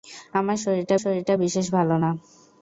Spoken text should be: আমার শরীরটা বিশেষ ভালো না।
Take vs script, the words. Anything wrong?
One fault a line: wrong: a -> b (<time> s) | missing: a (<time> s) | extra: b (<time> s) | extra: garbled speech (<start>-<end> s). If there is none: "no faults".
extra: শরীরটা (1.0 s)